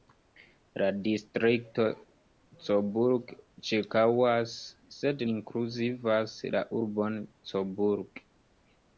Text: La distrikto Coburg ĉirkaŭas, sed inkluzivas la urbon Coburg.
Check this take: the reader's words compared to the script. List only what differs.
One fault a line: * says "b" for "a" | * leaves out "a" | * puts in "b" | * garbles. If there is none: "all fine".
all fine